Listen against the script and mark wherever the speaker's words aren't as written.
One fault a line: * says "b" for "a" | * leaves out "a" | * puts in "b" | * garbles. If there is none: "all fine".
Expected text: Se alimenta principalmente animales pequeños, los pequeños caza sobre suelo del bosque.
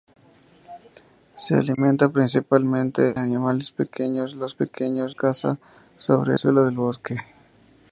all fine